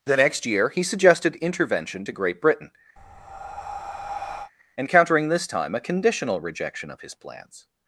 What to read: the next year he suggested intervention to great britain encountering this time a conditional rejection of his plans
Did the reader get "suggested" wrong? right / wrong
right